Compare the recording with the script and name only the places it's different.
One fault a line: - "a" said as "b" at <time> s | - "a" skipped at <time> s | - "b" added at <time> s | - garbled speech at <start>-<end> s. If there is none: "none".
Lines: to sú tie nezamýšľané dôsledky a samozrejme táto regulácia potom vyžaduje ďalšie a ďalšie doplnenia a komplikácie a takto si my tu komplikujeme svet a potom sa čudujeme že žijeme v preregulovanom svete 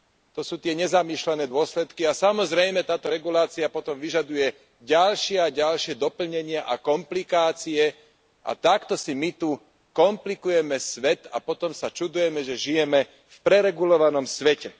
none